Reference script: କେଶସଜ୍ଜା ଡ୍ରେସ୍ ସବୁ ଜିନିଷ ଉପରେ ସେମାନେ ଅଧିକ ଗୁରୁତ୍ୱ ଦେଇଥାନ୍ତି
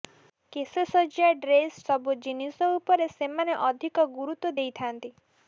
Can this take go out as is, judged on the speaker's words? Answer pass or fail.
pass